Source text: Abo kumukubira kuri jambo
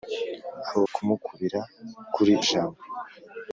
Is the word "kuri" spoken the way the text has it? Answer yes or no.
yes